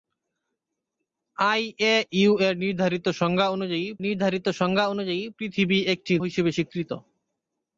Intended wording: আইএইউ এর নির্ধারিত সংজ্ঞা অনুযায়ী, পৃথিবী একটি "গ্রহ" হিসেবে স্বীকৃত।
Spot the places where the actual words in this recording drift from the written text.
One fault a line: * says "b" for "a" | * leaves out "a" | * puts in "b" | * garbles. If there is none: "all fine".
* puts in "নির্ধারিত সংজ্ঞা অনুযায়ী"
* leaves out "গ্রহ"